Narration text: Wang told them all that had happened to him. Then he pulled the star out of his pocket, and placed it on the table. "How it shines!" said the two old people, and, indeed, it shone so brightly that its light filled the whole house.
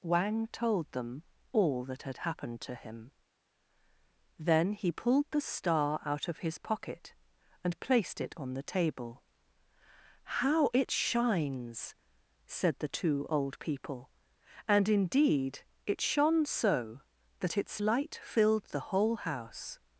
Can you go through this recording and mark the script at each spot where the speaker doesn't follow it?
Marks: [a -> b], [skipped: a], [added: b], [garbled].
Wang told them all that had happened to him. Then he pulled the star out of his pocket, and placed it on the table. "How it shines!" said the two old people, and, indeed, it shone so [skipped: brightly] that its light filled the whole house.